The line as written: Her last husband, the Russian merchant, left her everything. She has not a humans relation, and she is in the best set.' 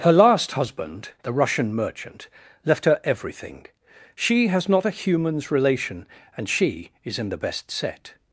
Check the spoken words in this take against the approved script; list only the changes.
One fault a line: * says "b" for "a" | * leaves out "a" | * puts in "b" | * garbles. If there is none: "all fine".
all fine